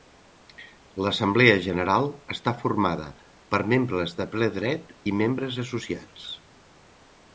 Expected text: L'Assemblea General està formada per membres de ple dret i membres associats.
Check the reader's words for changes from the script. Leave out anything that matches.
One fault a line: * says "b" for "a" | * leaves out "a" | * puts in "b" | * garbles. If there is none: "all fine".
all fine